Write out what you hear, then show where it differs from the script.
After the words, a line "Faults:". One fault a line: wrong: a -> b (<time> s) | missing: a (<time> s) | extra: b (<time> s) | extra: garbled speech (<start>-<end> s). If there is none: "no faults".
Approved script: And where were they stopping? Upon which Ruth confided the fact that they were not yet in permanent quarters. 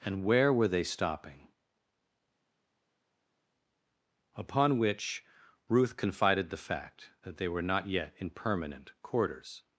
And where were they stopping? Upon which Ruth confided the fact that they were not yet in permanent quarters.
Faults:
no faults